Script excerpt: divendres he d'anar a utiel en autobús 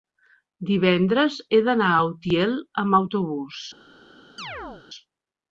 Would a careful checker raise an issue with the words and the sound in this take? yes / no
yes